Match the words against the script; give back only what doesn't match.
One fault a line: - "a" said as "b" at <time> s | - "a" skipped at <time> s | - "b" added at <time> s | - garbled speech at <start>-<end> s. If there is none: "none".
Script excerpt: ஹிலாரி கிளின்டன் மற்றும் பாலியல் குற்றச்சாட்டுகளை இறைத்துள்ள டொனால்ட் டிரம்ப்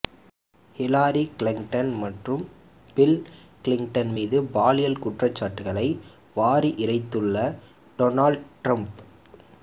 - "பில் கிளின்டன் மீது" added at 3.0 s
- "வாரி" added at 6.4 s